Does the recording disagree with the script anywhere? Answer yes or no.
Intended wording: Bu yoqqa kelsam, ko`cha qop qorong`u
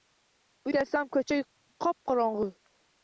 yes